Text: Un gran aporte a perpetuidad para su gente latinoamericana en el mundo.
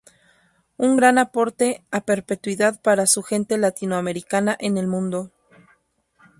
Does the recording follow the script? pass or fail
pass